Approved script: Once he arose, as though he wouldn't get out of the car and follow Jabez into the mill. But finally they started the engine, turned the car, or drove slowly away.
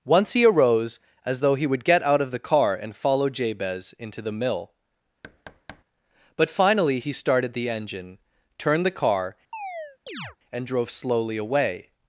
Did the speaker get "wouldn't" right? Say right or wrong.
wrong